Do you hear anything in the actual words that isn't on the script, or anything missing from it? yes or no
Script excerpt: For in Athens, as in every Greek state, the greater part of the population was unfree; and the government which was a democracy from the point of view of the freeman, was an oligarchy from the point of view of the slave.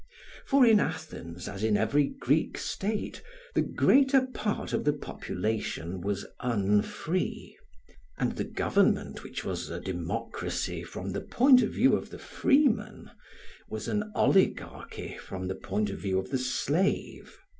no